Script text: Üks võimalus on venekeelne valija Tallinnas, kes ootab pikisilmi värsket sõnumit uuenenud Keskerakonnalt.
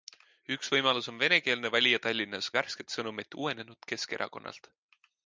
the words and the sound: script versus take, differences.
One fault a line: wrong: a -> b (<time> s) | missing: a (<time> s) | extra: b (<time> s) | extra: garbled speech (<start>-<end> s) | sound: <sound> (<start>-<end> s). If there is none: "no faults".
missing: kes ootab pikisilmi (2.5 s)